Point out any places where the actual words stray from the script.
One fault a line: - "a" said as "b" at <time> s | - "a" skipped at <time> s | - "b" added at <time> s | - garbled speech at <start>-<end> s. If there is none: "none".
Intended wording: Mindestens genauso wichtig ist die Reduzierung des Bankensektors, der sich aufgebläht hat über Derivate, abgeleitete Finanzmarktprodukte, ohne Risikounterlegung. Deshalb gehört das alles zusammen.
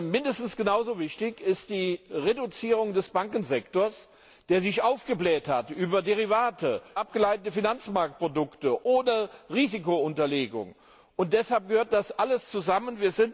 none